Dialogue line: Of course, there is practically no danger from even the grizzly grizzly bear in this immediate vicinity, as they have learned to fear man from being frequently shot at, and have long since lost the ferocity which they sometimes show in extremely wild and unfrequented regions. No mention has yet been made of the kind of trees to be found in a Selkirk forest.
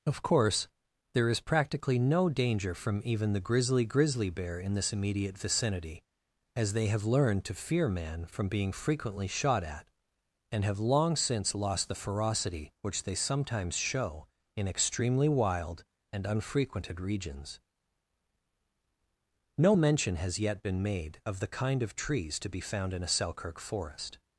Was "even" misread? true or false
false